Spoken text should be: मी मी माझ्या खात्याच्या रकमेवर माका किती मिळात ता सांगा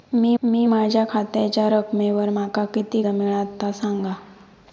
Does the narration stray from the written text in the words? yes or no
no